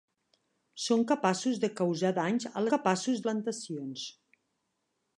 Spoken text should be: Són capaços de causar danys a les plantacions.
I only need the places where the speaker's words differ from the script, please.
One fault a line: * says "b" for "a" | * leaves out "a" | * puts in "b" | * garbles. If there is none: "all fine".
* says "capaços" for "les"